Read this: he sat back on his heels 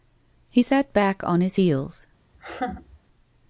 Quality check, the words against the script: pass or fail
pass